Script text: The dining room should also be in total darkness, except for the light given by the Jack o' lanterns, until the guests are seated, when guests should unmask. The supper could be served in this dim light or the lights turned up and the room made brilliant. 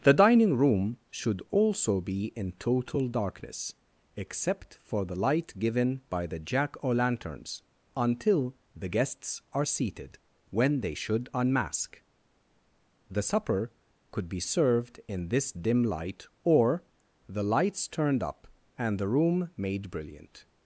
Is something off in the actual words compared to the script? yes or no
yes